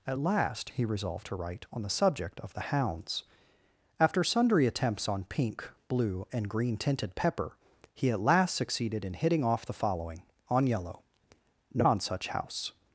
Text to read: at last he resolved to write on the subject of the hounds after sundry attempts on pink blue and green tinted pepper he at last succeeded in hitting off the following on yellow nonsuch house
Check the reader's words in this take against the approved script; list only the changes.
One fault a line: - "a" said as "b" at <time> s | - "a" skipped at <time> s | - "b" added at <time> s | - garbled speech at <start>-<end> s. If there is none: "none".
none